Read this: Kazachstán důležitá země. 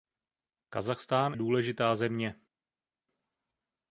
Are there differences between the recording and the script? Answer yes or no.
no